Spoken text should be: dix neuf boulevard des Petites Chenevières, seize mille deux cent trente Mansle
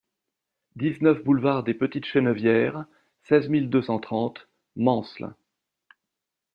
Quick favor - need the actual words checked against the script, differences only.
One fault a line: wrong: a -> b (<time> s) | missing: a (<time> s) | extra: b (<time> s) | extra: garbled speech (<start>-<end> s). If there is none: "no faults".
no faults